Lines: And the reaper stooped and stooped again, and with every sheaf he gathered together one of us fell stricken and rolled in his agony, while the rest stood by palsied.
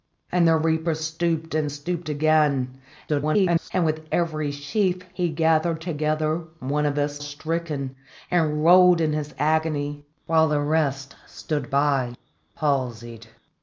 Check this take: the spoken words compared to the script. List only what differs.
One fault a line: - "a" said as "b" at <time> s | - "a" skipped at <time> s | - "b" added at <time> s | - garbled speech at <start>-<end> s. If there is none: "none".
- garbled speech at 3.1-3.7 s
- "fell" skipped at 7.2 s